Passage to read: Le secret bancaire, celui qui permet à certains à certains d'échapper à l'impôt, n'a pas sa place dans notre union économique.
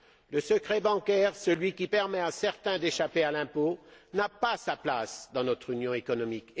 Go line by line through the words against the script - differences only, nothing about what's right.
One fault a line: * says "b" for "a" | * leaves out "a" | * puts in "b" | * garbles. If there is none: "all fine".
* leaves out "à certains"